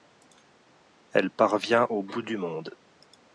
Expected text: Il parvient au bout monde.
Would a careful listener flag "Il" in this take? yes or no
yes